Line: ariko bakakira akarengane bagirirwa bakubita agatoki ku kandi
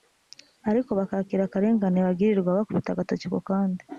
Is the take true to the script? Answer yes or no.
yes